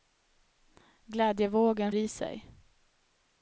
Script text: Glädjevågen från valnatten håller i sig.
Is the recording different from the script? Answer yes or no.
yes